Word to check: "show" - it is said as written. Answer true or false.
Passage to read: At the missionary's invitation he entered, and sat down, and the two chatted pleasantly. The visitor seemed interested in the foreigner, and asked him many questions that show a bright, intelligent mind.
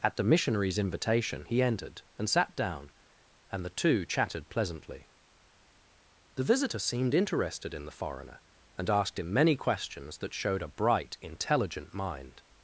false